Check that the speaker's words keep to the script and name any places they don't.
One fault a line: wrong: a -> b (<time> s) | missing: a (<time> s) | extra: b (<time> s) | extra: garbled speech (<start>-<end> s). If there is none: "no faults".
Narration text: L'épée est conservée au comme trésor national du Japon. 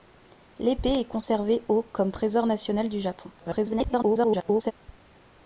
extra: garbled speech (3.4-4.7 s)